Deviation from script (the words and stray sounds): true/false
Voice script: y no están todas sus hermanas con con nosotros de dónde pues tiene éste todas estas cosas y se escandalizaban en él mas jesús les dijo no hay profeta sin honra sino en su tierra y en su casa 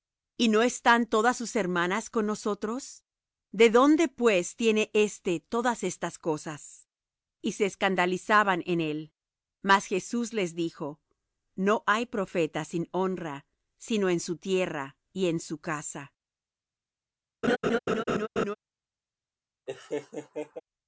true